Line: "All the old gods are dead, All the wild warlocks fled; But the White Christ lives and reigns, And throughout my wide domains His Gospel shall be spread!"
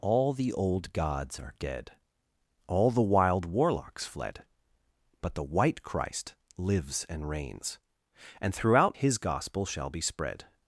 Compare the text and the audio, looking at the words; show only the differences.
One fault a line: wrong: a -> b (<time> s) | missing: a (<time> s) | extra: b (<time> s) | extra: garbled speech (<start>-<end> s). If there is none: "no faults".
missing: my wide domains (9.0 s)